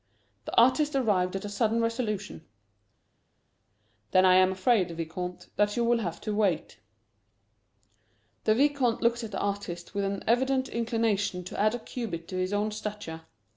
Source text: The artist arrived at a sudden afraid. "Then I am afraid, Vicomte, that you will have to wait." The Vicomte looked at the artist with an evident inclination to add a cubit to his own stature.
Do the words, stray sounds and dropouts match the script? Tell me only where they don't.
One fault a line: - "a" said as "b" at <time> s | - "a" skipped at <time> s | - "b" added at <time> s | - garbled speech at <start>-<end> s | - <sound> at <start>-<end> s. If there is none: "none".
- "afraid" said as "resolution" at 1.8 s